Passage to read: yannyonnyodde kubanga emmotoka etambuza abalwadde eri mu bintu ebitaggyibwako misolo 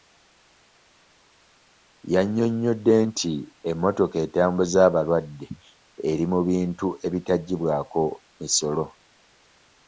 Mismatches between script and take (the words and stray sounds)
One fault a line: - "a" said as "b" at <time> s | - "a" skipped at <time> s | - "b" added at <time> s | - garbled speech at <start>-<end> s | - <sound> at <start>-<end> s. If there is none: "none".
- "kubanga" said as "nti" at 3.1 s